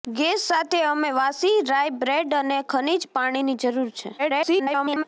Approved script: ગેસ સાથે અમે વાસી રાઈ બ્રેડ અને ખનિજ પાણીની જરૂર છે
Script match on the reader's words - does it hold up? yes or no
no